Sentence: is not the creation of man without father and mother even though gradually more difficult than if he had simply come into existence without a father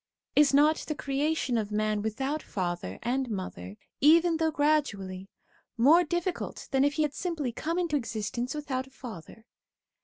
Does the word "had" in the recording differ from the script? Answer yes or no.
no